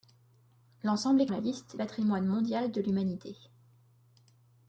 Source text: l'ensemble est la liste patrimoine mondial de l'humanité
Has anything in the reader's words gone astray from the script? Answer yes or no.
no